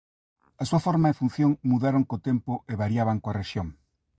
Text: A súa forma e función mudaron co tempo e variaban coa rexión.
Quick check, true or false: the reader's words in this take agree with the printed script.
true